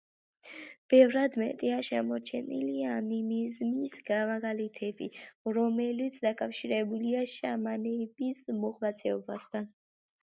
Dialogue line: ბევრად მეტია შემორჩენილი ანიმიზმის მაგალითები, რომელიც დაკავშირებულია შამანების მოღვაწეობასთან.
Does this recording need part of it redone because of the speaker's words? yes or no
no